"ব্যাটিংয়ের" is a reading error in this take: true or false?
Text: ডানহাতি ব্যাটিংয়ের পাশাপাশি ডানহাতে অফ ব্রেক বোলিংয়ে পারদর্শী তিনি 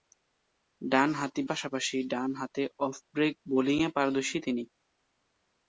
true